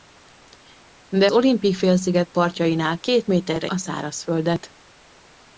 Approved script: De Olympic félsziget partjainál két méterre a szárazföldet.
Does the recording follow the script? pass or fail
pass